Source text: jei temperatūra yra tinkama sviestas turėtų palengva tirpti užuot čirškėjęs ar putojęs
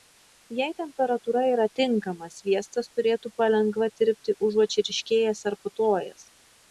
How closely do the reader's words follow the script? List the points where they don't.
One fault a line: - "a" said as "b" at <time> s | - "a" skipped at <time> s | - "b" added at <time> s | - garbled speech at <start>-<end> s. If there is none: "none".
none